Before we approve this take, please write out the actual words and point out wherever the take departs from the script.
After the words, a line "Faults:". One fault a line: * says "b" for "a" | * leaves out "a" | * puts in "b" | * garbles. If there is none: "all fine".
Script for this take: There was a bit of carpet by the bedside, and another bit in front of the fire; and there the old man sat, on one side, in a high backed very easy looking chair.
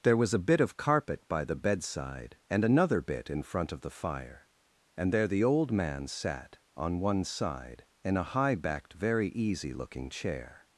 There was a bit of carpet by the bedside, and another bit in front of the fire; and there the old man sat, on one side, in a high backed very easy looking chair.
Faults:
all fine